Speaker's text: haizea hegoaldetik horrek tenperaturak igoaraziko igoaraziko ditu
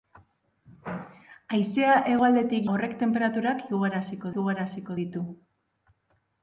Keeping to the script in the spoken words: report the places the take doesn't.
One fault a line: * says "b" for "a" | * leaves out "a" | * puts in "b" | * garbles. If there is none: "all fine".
all fine